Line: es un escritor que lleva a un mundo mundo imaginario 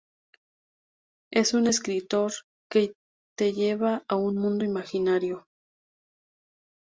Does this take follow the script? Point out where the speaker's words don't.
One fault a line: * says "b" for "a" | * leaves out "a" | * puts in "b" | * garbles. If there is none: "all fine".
* puts in "te"
* leaves out "mundo"